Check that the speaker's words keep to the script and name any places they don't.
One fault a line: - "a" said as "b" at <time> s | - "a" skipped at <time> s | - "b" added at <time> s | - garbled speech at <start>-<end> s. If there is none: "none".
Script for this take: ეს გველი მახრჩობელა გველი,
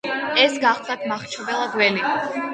- "გველი" said as "გახლდათ" at 0.6 s